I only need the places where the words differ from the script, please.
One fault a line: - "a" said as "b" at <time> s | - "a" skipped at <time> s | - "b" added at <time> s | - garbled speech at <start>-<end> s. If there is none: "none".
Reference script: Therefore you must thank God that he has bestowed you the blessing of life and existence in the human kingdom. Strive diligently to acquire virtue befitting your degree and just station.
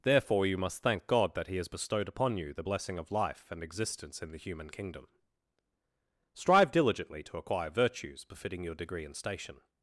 - "upon" added at 2.1 s
- "virtue" said as "virtues" at 7.7 s
- "just" skipped at 9.2 s